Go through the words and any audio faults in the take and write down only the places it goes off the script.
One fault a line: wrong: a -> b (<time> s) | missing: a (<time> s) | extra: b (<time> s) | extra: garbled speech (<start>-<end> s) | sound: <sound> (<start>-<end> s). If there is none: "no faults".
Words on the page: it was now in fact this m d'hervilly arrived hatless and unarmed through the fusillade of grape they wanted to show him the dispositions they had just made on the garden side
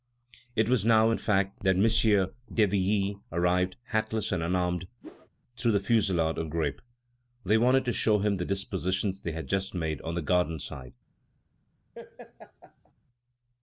wrong: this -> that (1.6 s)
sound: whoosh (5.0-5.3 s)
sound: laugh (11.9-12.9 s)